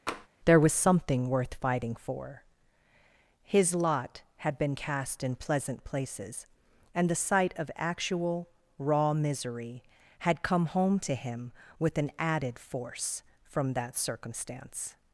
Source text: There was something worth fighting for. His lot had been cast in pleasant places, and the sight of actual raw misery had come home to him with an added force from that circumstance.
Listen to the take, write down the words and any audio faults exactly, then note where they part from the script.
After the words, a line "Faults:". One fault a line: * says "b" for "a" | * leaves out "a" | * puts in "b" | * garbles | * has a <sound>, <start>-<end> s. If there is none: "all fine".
There was something worth fighting for. His lot had been cast in pleasant places, and the sight of actual raw misery had come home to him with an added force from that circumstance.
Faults:
* has a tap, 0.1-0.3 s